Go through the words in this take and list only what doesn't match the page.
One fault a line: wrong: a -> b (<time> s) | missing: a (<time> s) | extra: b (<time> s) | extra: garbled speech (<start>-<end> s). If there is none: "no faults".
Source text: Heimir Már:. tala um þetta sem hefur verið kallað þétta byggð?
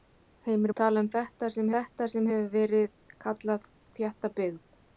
missing: Már (0.7 s)
extra: þetta sem (1.7 s)